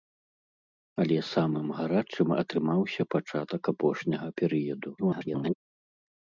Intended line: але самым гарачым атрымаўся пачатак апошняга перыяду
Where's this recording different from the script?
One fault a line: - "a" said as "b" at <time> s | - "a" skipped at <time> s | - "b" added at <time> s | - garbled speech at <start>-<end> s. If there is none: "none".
- garbled speech at 5.0-5.5 s